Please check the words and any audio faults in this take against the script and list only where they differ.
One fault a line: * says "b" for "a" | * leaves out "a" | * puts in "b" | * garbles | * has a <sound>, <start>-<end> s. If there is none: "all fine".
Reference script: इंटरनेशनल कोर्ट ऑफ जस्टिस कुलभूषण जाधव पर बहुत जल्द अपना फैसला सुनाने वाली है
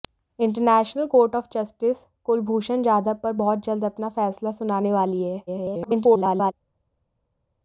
* garbles